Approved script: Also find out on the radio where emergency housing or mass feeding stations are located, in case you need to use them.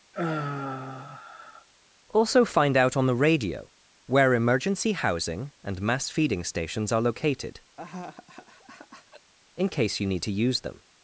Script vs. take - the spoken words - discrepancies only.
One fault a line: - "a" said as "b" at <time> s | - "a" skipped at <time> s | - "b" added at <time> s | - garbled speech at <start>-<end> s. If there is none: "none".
- "or" said as "and" at 5.6 s